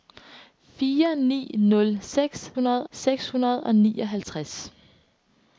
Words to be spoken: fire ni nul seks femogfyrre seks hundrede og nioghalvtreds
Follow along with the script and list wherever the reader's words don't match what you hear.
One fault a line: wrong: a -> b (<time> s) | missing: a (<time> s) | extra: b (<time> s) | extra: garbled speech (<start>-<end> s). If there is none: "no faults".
wrong: femogfyrre -> hundrede (2.5 s)